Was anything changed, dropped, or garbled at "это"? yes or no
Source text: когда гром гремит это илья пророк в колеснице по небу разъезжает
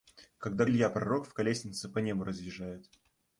yes